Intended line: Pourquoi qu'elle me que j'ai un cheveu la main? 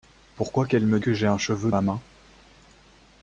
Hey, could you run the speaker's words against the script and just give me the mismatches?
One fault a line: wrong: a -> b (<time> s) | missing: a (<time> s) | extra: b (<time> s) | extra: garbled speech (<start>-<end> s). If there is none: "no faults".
no faults